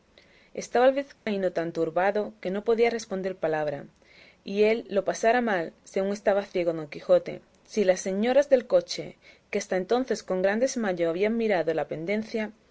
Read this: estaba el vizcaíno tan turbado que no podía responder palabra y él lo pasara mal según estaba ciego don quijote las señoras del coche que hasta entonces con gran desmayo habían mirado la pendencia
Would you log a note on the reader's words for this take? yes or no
yes